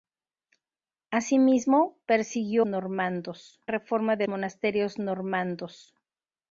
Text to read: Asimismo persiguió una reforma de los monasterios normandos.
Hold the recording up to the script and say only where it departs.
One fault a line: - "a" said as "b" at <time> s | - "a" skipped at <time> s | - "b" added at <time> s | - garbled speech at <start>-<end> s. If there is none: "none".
- "una" said as "normandos" at 2.6 s
- "los" skipped at 4.3 s